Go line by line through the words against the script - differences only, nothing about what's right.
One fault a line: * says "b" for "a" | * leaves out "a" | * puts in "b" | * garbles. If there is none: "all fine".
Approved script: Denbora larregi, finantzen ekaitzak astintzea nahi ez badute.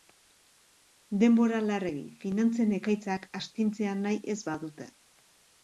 all fine